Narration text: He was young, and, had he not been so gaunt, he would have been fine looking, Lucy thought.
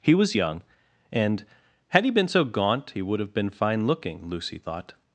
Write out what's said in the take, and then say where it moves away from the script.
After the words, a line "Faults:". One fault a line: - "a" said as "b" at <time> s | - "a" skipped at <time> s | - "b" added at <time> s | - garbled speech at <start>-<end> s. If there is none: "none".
He was young, and, had he been so gaunt, he would have been fine looking, Lucy thought.
Faults:
- "not" skipped at 2.1 s